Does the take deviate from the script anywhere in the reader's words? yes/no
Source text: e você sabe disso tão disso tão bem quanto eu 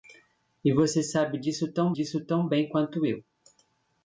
no